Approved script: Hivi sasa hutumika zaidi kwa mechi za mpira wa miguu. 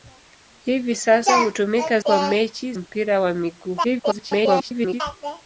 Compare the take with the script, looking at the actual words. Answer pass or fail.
fail